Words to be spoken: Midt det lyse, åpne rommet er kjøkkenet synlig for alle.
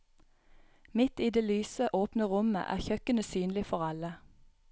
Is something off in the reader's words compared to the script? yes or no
yes